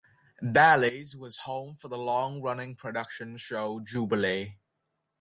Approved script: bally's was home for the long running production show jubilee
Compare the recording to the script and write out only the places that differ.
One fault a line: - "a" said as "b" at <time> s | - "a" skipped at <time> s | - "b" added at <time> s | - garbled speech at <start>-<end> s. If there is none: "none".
none